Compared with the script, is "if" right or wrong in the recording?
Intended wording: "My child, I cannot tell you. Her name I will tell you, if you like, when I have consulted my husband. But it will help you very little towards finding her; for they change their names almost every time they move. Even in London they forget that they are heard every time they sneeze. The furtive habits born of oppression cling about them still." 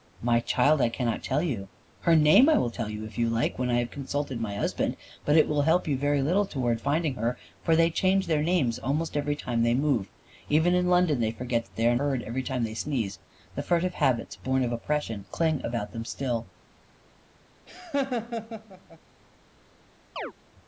right